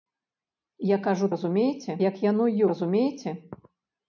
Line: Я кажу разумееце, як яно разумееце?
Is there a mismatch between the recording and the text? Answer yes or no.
no